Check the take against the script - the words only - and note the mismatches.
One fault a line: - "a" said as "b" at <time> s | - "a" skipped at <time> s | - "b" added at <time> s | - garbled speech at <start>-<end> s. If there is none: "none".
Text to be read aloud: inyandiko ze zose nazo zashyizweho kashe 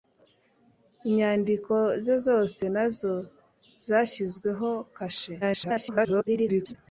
- garbled speech at 5.4-6.7 s